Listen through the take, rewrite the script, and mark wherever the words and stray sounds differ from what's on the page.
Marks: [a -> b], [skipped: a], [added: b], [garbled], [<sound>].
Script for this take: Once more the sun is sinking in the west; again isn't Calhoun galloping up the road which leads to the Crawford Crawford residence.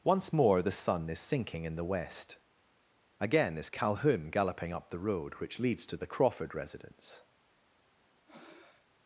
Once more the sun is sinking in the west; again [isn't -> is] Calhoun galloping up the road which leads to the Crawford [skipped: Crawford] residence. [breath]